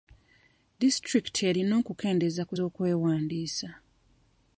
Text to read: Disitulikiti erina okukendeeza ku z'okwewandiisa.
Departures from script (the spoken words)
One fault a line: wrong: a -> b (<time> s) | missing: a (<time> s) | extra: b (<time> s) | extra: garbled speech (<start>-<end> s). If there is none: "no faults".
no faults